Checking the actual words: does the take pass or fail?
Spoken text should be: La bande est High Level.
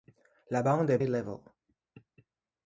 pass